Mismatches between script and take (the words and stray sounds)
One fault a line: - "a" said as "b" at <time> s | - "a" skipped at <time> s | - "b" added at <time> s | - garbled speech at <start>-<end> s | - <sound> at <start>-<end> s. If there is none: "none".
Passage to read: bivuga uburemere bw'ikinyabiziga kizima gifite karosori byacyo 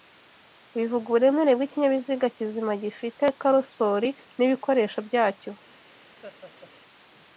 - "n'ibikoresho" added at 4.4 s
- laugh at 6.2-6.7 s